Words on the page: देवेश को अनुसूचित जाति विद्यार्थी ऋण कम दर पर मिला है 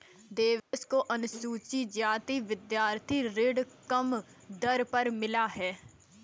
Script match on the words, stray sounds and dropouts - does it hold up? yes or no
no